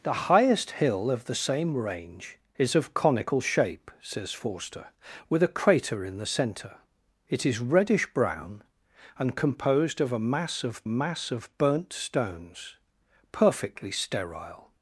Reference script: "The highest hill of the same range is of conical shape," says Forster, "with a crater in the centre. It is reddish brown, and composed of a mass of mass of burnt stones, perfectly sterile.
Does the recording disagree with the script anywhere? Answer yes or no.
no